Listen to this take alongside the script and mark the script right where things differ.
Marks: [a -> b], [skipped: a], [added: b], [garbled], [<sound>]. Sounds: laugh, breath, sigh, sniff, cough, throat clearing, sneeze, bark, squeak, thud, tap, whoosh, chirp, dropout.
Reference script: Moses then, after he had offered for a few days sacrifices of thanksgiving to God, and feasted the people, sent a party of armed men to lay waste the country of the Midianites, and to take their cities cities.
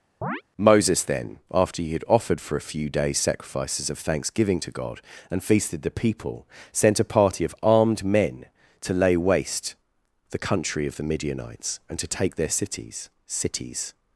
[chirp] Moses then, after he had offered for a few days sacrifices of thanksgiving to God, and feasted the people, sent a party of armed men to lay waste the country of the Midianites, and to take their cities cities.